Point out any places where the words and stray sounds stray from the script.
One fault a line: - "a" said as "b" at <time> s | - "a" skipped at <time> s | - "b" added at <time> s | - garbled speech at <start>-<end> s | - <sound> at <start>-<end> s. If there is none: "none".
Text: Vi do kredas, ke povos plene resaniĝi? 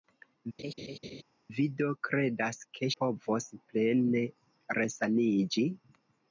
- laugh at 0.6-1.2 s